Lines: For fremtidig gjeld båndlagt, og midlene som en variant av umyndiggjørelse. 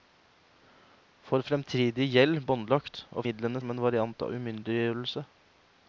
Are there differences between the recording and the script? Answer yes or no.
no